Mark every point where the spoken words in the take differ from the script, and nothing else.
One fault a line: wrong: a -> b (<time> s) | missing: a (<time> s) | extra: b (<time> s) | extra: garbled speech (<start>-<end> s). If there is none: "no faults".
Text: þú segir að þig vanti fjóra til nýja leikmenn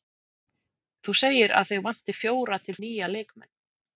no faults